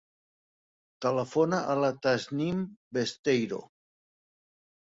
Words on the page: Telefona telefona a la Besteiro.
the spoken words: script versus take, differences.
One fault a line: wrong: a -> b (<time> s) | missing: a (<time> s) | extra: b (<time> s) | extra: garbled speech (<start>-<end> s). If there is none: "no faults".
missing: telefona (1.6 s)
extra: Tasnim (2.1 s)